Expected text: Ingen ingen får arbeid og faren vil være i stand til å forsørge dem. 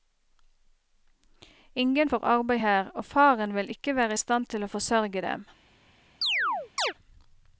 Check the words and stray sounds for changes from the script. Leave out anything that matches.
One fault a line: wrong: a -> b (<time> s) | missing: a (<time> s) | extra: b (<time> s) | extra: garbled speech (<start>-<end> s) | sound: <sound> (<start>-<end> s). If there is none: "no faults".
missing: ingen (2.1 s)
extra: her (2.6 s)
extra: ikke (3.7 s)
sound: chirp (6.2-6.9 s)